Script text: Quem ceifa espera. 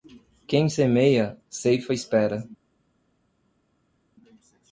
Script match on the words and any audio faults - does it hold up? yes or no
no